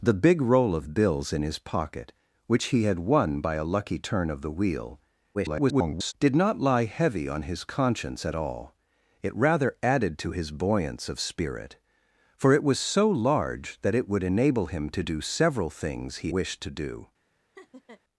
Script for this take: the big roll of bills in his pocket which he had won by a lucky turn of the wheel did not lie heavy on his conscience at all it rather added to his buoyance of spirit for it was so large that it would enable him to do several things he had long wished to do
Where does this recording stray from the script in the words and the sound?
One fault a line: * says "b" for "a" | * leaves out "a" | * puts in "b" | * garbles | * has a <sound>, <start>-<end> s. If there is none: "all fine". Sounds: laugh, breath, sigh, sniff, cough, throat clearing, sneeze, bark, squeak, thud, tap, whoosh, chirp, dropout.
* garbles
* leaves out "had long"
* has a laugh, 17.6-18.0 s